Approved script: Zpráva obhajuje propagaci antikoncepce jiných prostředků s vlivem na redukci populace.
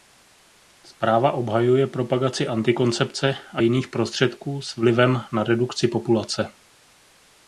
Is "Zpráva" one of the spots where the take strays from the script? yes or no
no